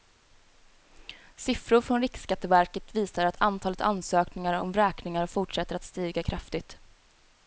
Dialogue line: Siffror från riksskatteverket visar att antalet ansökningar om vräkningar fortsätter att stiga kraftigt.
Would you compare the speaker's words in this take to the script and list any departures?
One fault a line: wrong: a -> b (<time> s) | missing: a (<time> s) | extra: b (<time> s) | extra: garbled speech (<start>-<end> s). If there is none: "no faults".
no faults